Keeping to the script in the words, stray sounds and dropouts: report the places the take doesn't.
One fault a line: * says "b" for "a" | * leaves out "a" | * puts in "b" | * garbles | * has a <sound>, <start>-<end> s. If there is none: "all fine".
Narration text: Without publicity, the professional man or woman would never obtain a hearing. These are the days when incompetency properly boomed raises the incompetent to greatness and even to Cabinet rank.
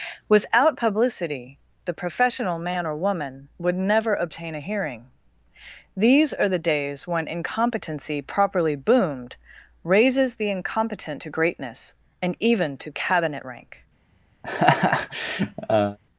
* has a laugh, 14.4-16.0 s